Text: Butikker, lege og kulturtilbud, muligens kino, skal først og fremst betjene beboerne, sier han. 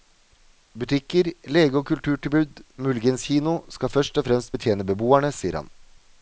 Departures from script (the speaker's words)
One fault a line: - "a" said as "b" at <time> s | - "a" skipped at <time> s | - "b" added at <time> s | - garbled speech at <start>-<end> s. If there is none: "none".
none